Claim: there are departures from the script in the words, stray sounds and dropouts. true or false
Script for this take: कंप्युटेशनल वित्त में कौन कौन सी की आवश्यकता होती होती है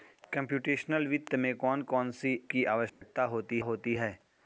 true